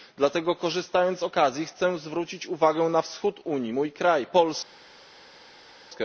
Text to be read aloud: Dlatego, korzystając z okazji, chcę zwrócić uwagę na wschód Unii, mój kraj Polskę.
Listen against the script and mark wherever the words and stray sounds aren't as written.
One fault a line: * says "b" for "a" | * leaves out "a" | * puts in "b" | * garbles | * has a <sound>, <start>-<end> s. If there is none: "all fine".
all fine